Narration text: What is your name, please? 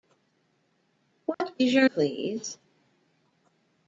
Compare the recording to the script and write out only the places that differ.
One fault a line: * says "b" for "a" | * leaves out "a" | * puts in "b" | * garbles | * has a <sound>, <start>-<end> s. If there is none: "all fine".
* has a dropout, 1.3-1.4 s
* leaves out "name"